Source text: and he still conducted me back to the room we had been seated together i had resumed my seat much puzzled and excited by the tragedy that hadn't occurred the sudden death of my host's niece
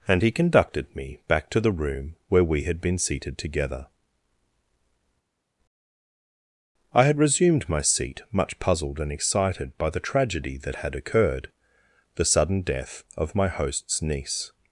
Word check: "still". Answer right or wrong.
wrong